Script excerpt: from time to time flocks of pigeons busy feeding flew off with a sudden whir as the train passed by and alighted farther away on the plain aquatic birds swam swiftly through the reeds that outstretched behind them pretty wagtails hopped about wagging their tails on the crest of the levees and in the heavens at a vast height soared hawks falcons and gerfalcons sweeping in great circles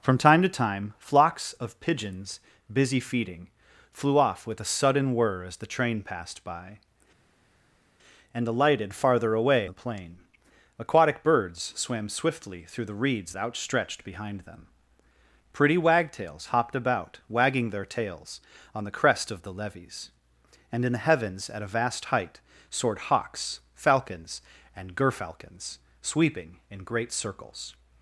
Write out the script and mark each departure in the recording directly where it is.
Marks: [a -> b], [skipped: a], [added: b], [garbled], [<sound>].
from time to time flocks of pigeons busy feeding flew off with a sudden whir as the train passed by and alighted farther away [skipped: on] the plain aquatic birds swam swiftly through the reeds [skipped: that] outstretched behind them pretty wagtails hopped about wagging their tails on the crest of the levees and in the heavens at a vast height soared hawks falcons and gerfalcons sweeping in great circles